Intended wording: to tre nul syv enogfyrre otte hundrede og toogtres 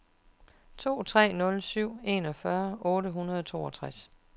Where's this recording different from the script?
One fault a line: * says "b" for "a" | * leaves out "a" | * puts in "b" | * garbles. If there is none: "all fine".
all fine